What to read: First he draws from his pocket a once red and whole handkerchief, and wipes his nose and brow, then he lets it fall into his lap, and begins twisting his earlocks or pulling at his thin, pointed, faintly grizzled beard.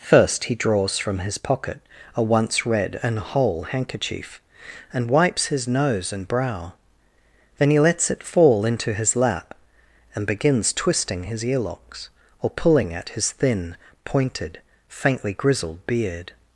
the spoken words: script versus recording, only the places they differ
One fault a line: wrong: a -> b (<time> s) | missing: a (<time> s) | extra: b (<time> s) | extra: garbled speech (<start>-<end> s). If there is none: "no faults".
no faults